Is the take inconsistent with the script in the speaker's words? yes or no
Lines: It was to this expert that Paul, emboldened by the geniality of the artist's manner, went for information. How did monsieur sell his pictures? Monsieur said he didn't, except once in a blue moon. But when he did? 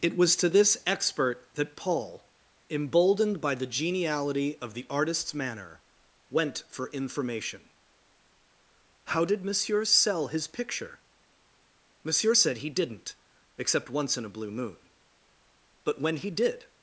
yes